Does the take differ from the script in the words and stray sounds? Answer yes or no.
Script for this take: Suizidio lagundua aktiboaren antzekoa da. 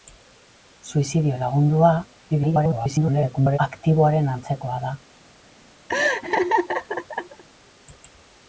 yes